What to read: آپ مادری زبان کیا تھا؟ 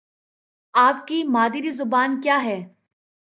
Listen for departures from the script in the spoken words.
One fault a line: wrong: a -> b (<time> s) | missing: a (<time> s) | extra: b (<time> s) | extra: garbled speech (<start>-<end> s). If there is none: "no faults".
extra: کی (1.1 s)
wrong: تھا -> ہے (2.4 s)